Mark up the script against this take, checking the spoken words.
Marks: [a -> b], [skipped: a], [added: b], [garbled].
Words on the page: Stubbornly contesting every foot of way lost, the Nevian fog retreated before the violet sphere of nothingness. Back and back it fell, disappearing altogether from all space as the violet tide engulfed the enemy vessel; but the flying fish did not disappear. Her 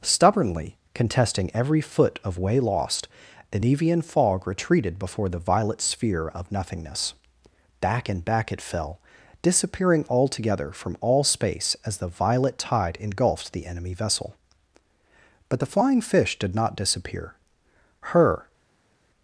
Stubbornly contesting every foot of way lost, the Nevian fog retreated before the violet sphere of nothingness. Back and back it fell, disappearing altogether from all space as the violet tide engulfed the enemy vessel; but the flying fish did not disappear. Her